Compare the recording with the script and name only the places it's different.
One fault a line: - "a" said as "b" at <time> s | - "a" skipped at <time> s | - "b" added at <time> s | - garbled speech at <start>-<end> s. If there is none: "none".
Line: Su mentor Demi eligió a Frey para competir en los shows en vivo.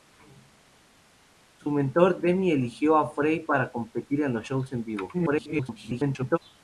- garbled speech at 5.1-6.4 s